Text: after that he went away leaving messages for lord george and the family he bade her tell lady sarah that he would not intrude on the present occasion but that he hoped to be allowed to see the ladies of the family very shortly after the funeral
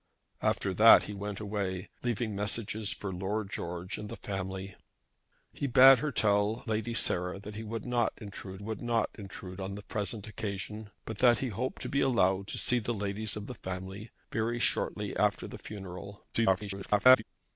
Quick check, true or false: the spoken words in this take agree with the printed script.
false